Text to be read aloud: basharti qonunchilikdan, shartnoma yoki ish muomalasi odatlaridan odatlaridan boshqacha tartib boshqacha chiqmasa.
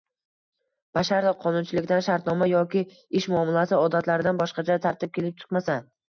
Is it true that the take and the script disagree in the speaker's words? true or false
true